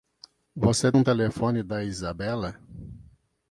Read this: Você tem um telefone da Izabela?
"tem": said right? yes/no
no